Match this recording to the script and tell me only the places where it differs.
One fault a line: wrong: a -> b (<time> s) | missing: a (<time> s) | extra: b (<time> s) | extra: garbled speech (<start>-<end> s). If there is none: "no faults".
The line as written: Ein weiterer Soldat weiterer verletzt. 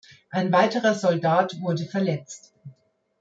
wrong: weiterer -> wurde (1.6 s)